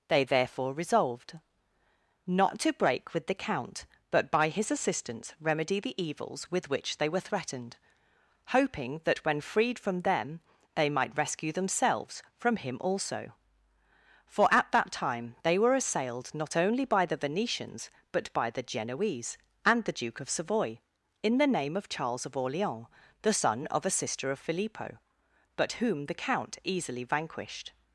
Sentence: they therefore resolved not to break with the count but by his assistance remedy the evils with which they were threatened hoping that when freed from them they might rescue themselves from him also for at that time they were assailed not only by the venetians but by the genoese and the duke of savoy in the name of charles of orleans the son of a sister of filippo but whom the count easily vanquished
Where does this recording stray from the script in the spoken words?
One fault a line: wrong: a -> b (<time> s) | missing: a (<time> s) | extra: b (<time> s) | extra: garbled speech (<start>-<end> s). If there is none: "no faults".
no faults